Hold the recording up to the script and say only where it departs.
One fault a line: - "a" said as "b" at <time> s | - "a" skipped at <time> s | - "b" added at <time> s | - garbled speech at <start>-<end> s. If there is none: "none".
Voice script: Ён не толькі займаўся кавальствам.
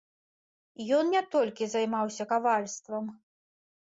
none